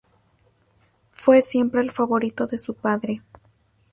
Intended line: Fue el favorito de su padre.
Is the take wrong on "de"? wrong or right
right